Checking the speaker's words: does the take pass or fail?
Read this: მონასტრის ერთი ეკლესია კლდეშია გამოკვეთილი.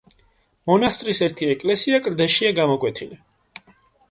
pass